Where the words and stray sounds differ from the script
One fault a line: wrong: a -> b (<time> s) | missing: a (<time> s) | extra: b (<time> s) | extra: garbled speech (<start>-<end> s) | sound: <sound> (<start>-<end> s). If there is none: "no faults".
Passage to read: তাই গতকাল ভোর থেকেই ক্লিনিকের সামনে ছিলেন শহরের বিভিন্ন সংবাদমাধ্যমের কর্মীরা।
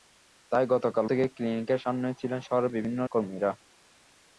missing: ভোর (1.1 s)
missing: সংবাদমাধ্যমের (3.0 s)